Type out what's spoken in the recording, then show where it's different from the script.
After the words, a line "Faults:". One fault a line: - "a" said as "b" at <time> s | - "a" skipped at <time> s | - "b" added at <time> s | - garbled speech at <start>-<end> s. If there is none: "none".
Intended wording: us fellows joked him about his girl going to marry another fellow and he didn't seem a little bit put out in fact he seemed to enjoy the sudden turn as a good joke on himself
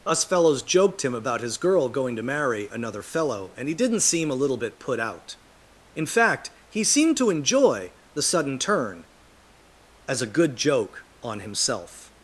us fellows joked him about his girl going to marry another fellow and he didn't seem a little bit put out in fact he seemed to enjoy the sudden turn as a good joke on himself
Faults:
none